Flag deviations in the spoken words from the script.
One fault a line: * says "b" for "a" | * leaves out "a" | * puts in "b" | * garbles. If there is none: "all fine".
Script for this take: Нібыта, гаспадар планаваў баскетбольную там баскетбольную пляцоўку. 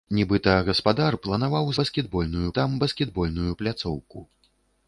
all fine